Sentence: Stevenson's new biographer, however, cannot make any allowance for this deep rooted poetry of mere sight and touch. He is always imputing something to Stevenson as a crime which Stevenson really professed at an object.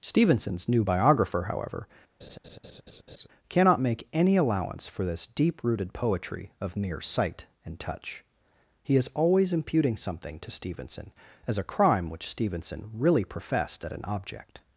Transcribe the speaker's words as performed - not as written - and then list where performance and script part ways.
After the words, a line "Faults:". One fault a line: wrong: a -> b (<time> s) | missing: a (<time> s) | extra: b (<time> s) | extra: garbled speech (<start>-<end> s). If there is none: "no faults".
Stevenson's new biographer, however, cannot make any allowance for this deep rooted poetry of mere sight and touch. He is always imputing something to Stevenson as a crime which Stevenson really professed at an object.
Faults:
no faults